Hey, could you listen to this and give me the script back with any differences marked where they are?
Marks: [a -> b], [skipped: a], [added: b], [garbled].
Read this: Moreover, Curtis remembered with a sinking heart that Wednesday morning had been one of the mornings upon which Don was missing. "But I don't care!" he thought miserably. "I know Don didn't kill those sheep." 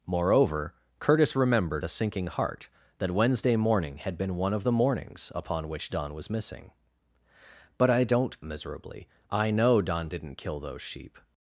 Moreover, Curtis remembered [skipped: with] a sinking heart that Wednesday morning had been one of the mornings upon which Don was missing. "But I don't [skipped: care!" he thought] miserably. "I know Don didn't kill those sheep."